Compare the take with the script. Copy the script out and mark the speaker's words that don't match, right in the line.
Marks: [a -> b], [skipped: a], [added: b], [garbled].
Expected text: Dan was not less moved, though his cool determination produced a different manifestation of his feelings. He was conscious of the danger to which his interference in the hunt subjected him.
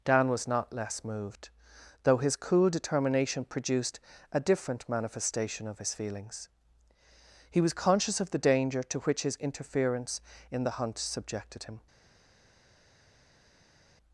Dan was not less moved, though his cool determination produced a different manifestation of his feelings. He was conscious of the danger to which his interference in the hunt subjected him.